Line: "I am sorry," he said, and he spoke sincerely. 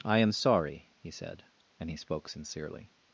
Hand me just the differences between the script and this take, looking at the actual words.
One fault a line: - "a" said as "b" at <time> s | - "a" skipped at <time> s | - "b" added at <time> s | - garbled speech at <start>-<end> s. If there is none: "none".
none